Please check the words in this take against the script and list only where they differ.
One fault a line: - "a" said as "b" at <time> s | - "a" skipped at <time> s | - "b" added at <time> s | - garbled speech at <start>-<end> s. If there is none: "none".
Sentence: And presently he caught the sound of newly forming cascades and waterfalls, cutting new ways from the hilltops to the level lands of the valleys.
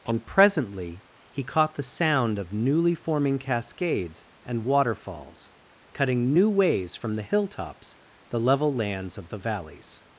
- "to" skipped at 8.0 s